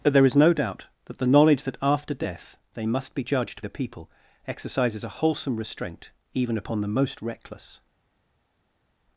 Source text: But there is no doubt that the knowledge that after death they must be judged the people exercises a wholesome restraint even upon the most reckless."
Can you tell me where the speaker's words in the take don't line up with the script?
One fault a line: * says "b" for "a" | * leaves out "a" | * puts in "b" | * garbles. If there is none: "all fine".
all fine